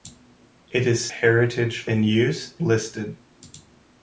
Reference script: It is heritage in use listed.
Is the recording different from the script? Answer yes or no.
no